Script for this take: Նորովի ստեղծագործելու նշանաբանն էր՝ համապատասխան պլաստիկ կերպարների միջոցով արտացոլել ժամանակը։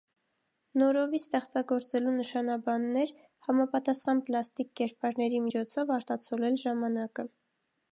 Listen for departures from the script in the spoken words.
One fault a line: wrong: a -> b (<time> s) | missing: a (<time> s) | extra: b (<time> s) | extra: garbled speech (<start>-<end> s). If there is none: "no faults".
no faults